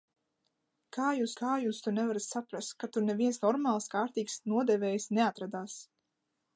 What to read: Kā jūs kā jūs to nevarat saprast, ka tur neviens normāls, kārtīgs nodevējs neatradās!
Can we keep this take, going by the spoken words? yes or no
yes